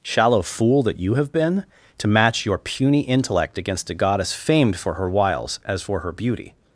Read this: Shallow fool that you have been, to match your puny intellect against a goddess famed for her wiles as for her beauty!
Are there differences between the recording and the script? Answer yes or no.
no